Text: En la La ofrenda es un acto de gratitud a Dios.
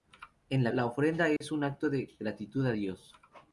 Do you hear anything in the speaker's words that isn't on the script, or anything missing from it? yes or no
no